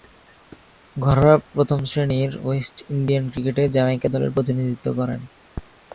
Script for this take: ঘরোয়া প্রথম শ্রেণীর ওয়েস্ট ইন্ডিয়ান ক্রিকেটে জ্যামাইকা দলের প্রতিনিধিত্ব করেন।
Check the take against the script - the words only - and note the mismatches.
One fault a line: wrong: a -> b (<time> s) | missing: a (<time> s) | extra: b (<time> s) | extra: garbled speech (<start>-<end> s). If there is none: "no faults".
no faults